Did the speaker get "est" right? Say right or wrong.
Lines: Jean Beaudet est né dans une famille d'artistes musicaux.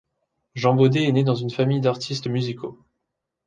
right